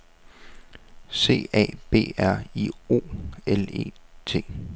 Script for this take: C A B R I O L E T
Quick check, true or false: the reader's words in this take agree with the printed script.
true